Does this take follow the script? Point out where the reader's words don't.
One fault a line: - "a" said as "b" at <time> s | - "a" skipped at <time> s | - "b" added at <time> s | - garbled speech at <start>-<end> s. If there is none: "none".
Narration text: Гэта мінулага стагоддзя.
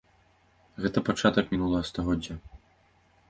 - "пачатак" added at 1.1 s